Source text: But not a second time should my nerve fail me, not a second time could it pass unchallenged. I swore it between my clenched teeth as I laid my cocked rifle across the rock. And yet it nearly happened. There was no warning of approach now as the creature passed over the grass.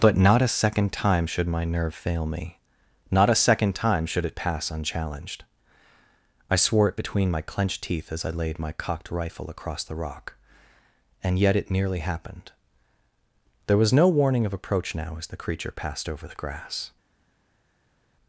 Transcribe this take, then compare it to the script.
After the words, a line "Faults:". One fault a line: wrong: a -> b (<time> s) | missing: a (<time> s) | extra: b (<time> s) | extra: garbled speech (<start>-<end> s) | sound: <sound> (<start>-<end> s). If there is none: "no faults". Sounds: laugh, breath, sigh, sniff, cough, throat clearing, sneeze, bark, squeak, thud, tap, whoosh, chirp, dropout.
But not a second time should my nerve fail me, not a second time should it pass unchallenged. I swore it between my clenched teeth as I laid my cocked rifle across the rock. And yet it nearly happened. There was no warning of approach now as the creature passed over the grass.
Faults:
wrong: could -> should (4.1 s)